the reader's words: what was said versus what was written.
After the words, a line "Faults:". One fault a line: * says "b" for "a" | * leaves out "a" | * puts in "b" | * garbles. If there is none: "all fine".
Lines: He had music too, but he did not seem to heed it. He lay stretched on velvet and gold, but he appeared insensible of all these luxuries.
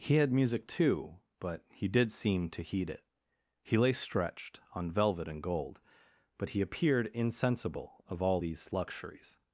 He had music too, but he did seem to heed it. He lay stretched on velvet and gold, but he appeared insensible of all these luxuries.
Faults:
* leaves out "not"